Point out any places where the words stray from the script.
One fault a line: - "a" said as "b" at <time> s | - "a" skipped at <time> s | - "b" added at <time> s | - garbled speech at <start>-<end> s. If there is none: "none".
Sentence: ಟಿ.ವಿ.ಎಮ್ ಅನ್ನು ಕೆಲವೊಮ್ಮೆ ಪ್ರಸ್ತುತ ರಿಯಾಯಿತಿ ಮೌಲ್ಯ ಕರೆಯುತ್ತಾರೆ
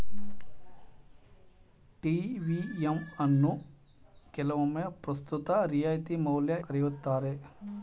none